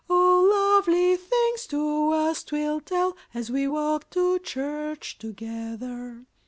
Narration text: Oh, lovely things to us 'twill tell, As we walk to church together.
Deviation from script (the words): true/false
false